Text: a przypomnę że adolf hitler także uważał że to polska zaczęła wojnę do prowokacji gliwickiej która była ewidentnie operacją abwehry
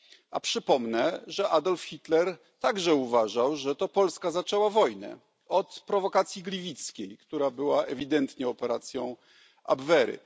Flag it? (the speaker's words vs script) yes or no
yes